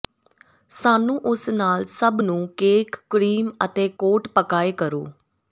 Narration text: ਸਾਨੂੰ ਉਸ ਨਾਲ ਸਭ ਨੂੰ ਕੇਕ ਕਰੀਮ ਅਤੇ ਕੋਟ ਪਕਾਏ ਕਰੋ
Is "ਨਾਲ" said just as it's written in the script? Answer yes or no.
yes